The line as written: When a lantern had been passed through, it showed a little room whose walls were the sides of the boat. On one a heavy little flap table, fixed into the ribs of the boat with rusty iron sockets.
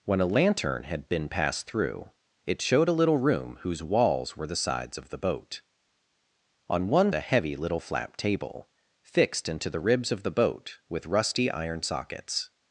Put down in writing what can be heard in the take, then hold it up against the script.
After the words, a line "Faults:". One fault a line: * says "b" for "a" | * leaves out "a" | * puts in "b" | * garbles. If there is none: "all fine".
When a lantern had been passed through, it showed a little room whose walls were the sides of the boat. On one a heavy little flap table, fixed into the ribs of the boat with rusty iron sockets.
Faults:
all fine